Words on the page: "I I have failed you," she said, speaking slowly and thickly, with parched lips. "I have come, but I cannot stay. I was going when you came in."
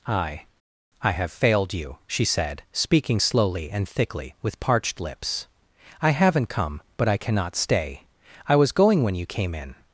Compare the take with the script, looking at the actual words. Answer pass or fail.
fail